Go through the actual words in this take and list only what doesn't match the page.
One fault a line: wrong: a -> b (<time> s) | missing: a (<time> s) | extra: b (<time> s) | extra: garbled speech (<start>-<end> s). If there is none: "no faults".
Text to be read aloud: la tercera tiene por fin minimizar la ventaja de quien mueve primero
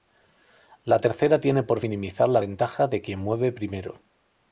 missing: fin (1.8 s)